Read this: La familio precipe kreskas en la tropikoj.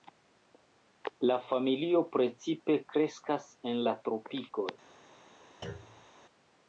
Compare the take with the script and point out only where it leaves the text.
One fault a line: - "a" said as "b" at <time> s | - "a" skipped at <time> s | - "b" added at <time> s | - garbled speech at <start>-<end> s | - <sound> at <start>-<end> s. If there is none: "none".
- thud at 5.6-6.1 s